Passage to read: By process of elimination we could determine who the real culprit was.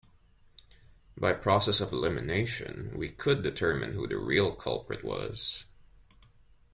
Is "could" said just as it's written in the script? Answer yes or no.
yes